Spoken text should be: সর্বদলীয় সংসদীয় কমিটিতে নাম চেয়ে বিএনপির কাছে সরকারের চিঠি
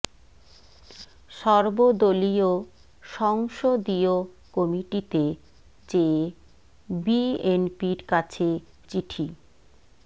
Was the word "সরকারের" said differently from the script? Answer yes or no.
yes